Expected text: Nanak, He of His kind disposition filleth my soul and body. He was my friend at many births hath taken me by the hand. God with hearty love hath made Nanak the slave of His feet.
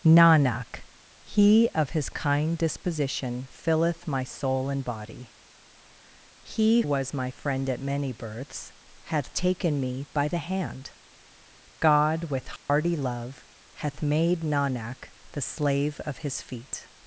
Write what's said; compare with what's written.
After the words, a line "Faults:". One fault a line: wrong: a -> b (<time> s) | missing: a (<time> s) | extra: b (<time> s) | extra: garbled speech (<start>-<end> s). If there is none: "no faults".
Nanak, He of His kind disposition filleth my soul and body. He was my friend at many births hath taken me by the hand. God with hearty love hath made Nanak the slave of His feet.
Faults:
no faults